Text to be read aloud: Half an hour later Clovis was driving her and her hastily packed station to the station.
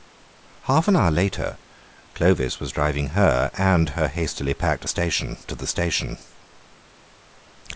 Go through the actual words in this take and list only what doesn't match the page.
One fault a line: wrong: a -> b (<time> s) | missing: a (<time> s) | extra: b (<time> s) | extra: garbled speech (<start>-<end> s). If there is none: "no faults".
no faults